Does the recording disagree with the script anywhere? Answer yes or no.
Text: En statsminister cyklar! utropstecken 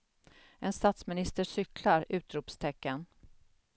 no